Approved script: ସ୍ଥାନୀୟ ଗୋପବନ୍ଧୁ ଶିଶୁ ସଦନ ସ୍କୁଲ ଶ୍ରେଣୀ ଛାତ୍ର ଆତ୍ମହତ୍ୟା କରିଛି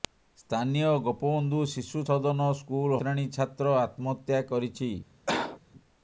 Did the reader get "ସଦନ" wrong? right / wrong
right